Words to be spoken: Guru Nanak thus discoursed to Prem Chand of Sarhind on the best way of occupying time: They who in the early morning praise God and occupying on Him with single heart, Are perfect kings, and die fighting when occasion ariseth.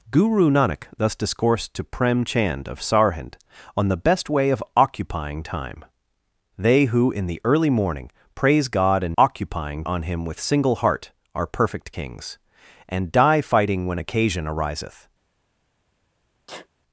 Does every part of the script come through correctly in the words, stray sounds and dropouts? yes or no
no